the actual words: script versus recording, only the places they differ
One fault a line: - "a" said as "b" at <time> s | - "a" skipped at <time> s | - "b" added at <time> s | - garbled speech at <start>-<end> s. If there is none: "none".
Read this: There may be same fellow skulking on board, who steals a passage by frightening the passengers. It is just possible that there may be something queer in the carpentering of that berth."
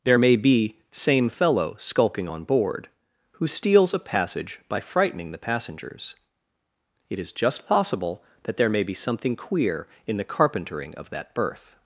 none